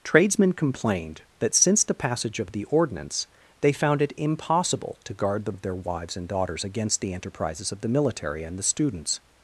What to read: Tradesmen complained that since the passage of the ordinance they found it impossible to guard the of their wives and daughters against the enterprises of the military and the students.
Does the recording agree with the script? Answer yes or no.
yes